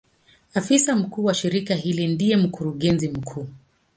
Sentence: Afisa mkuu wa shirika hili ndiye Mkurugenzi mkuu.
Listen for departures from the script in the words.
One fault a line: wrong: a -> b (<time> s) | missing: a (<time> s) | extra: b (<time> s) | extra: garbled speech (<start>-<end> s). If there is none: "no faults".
no faults